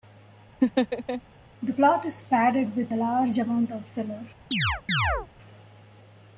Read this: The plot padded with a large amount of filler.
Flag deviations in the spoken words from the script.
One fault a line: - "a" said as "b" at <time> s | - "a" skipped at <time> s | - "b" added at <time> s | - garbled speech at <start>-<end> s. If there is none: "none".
- "is" added at 2.1 s